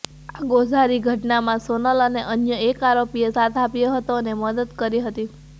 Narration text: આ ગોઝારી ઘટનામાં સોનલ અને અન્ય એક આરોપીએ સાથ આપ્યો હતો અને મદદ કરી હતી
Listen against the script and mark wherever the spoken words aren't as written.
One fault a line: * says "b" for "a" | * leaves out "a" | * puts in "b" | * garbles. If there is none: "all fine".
all fine